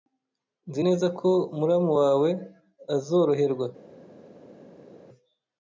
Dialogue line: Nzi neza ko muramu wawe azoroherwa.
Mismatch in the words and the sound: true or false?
false